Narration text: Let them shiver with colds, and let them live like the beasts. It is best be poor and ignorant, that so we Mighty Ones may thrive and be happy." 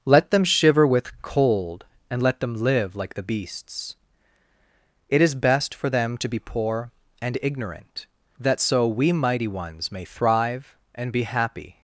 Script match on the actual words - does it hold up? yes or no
no